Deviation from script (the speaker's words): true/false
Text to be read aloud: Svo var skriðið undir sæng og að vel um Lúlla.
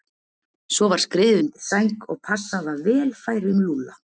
true